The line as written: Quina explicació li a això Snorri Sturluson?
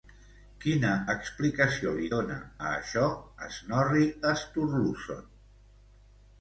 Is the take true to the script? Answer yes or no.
no